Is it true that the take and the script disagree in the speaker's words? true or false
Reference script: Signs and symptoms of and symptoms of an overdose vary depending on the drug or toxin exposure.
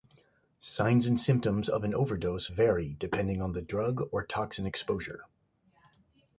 true